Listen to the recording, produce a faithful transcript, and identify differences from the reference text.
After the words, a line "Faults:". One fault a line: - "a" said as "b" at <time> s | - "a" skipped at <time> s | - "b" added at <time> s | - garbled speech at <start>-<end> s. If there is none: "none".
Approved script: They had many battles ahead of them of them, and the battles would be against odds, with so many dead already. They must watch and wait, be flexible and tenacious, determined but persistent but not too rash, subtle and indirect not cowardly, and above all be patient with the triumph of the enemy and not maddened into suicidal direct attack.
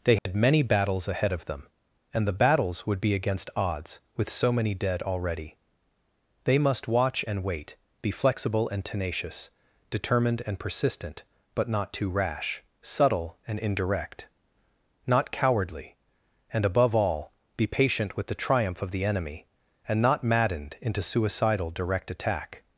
They had many battles ahead of them, and the battles would be against odds, with so many dead already. They must watch and wait, be flexible and tenacious, determined and persistent but not too rash, subtle and indirect not cowardly, and above all be patient with the triumph of the enemy and not maddened into suicidal direct attack.
Faults:
- "of them" skipped at 1.7 s
- "but" said as "and" at 10.5 s